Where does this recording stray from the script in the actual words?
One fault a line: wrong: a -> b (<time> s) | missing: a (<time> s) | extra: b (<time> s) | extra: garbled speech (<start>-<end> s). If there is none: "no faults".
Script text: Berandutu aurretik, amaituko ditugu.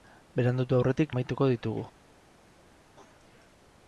no faults